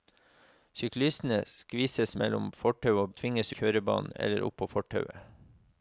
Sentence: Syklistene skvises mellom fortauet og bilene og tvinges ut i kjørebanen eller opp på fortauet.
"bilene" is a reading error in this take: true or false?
true